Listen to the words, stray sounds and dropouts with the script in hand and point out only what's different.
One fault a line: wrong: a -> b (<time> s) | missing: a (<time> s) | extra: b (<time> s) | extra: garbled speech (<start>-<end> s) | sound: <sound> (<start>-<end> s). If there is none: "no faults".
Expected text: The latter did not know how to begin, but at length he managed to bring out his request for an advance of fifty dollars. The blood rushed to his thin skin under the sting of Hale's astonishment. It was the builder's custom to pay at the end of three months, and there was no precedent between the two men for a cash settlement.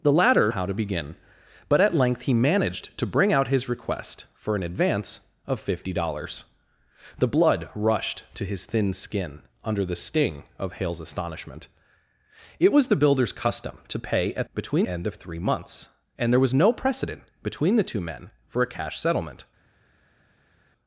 missing: did not know (0.5 s)
wrong: the -> between (14.5 s)